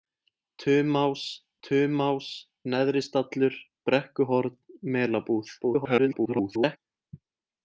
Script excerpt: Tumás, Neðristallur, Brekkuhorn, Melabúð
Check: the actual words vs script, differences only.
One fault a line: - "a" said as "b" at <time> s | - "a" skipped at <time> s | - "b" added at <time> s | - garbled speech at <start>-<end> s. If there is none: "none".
- "tumás" added at 1.7 s
- garbled speech at 5.6-6.8 s